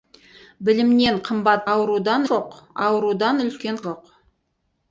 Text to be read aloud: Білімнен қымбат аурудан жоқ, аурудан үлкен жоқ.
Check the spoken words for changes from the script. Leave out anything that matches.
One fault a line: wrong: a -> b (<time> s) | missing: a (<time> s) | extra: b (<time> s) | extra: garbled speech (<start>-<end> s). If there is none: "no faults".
no faults